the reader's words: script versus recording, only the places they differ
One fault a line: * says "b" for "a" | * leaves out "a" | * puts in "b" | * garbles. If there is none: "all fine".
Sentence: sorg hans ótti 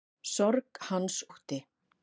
all fine